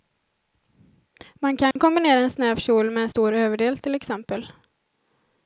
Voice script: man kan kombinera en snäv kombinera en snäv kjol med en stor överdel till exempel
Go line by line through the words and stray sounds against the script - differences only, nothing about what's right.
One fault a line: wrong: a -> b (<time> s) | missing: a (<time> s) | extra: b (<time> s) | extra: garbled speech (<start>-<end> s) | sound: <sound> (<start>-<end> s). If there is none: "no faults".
sound: dropout (1.7-1.8 s)
missing: kombinera en snäv (2.5 s)